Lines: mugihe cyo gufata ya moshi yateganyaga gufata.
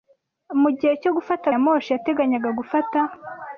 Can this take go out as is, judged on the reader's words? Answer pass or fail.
pass